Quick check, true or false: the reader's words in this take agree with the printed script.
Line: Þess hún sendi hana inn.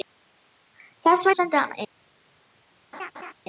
true